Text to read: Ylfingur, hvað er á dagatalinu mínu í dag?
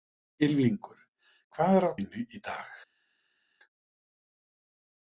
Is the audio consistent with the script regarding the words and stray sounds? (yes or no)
no